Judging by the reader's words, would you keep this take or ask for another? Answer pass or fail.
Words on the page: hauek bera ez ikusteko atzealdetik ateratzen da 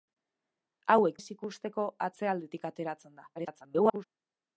fail